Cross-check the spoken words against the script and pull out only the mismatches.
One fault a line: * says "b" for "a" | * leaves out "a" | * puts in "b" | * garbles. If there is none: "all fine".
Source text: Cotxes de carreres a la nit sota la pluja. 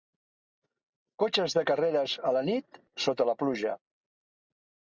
all fine